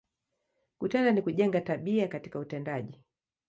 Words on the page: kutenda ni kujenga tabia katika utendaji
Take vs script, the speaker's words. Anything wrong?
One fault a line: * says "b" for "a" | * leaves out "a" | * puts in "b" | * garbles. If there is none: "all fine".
all fine